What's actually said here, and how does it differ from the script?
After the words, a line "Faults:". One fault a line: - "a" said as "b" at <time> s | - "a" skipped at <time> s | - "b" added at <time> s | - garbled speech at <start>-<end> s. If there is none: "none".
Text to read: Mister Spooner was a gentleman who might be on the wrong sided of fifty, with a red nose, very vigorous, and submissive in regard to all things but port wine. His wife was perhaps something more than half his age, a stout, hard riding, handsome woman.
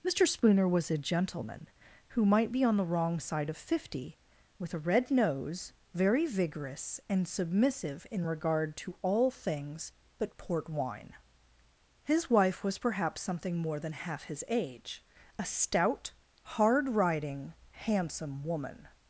Mister Spooner was a gentleman who might be on the wrong side of fifty, with a red nose, very vigorous, and submissive in regard to all things but port wine. His wife was perhaps something more than half his age, a stout, hard riding, handsome woman.
Faults:
- "sided" said as "side" at 3.2 s